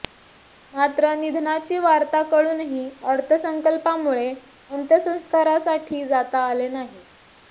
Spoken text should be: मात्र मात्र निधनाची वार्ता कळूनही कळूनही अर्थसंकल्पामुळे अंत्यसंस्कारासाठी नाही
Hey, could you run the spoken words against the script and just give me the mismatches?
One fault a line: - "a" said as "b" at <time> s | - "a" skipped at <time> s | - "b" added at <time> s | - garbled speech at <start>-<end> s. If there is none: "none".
- "मात्र" skipped at 1.1 s
- "कळूनही" skipped at 2.9 s
- "जाता आले" added at 6.1 s